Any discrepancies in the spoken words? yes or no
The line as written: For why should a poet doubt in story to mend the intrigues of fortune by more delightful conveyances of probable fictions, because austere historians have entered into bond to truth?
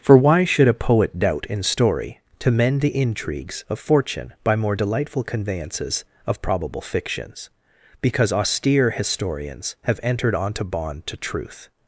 yes